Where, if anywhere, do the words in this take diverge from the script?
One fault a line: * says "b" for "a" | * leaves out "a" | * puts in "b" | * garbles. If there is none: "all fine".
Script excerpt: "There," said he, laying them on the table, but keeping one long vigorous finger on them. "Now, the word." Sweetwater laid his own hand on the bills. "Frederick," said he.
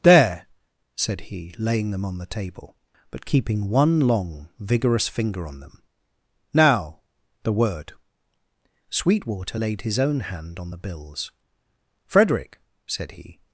all fine